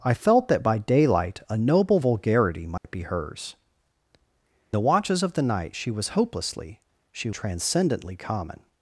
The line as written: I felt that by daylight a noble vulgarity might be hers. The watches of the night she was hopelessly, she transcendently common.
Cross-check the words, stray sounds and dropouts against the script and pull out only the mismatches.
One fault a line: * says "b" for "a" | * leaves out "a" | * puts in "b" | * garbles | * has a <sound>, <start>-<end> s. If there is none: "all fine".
* has a dropout, 2.8-2.8 s